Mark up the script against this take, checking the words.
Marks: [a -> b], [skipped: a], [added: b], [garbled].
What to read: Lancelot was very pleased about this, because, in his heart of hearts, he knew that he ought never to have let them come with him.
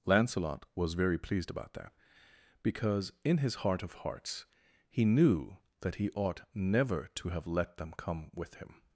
Lancelot was very pleased about [this, -> that] because, in his heart of hearts, he knew that he ought never to have let them come with him.